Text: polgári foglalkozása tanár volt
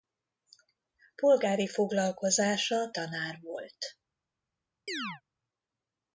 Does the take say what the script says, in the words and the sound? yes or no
no